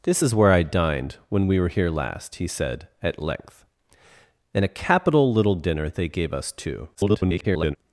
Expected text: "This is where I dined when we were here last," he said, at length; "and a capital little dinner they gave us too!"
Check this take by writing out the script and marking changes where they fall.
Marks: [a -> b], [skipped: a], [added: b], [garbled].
"This is where I dined when we were here last," he said, at length; "and a capital little dinner they gave us too!" [garbled]